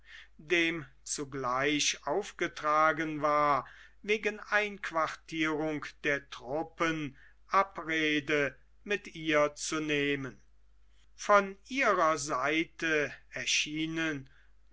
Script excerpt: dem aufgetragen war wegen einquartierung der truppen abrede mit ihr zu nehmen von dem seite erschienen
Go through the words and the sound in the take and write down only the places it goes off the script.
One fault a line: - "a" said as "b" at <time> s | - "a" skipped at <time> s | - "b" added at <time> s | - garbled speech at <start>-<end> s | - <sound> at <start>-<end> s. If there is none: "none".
- "zugleich" added at 1.0 s
- "dem" said as "ihrer" at 11.7 s